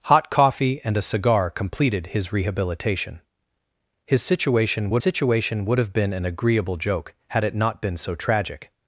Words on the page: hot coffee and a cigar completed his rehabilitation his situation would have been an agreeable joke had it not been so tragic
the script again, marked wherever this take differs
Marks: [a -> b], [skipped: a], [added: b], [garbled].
hot coffee and a cigar completed his rehabilitation his situation would [added: situation would] have been an agreeable joke had it not been so tragic